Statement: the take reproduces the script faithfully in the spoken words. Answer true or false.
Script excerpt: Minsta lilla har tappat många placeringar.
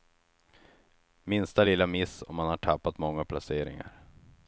false